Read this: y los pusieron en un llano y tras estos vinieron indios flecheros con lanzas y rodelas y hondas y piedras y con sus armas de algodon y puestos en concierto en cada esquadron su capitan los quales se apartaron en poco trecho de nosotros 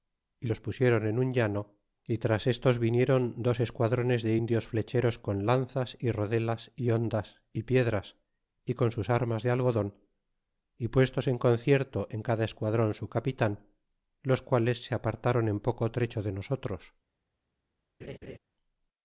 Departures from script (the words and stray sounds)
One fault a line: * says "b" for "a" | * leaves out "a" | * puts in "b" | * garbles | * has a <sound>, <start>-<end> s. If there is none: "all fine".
* puts in "dos esquadrones de"
* has a laugh, 18.0-18.4 s